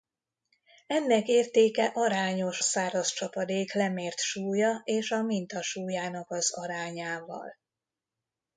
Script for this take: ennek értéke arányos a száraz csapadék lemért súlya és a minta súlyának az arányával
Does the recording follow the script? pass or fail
fail